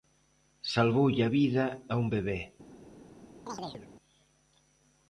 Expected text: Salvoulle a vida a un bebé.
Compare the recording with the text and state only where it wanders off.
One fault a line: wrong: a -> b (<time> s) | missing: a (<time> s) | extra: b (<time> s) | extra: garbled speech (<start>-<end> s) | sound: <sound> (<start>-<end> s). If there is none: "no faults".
sound: chirp (3.5-3.9 s)